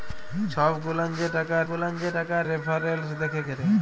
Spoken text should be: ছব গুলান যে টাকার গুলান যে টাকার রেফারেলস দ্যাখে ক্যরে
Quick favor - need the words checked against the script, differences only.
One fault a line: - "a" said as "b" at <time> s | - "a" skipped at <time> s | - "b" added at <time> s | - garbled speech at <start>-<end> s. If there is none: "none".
none